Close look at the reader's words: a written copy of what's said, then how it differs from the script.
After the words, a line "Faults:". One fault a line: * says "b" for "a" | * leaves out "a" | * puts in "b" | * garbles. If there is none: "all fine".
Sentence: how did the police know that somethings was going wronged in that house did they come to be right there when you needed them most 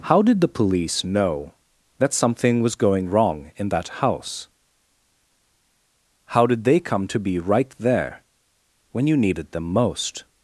how did the police know that something was going wrong in that house how did they come to be right there when you needed them most
Faults:
* says "something" for "somethings"
* says "wrong" for "wronged"
* puts in "how"